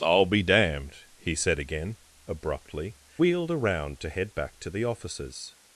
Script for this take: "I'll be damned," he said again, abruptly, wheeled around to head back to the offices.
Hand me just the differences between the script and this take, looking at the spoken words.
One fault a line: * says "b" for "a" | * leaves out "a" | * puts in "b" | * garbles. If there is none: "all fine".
all fine